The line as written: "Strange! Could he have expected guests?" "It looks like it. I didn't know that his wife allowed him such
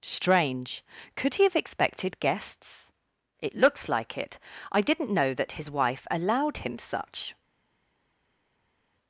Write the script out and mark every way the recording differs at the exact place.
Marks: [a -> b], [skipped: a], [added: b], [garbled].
"Strange! Could he have expected guests?" "It looks like it. I didn't know that his wife allowed him such